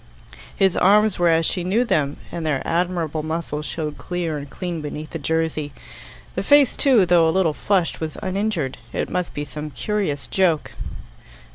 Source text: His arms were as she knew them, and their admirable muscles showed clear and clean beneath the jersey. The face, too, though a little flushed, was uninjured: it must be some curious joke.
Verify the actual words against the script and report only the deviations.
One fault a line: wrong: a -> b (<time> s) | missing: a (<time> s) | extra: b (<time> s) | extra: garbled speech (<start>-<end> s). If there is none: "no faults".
no faults